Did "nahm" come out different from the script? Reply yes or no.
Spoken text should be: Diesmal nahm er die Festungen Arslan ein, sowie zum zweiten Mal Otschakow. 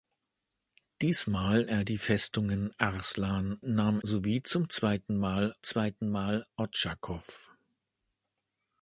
yes